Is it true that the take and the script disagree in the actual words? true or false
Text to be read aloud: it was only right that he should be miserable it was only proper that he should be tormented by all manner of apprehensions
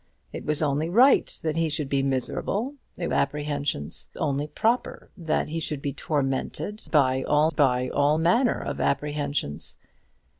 true